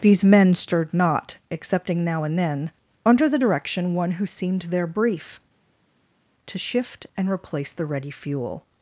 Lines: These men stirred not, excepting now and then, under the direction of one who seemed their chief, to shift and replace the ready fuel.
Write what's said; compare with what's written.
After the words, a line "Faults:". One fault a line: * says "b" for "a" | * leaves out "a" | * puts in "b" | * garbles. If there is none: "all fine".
These men stirred not, excepting now and then, under the direction one who seemed their brief, to shift and replace the ready fuel.
Faults:
* leaves out "of"
* says "brief" for "chief"